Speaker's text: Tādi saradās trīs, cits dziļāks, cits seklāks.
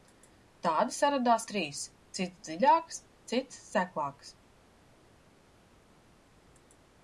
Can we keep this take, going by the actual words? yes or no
yes